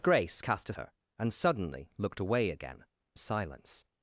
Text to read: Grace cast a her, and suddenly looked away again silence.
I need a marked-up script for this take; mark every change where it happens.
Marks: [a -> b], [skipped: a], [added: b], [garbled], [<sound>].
Grace cast a her, and suddenly looked away again silence.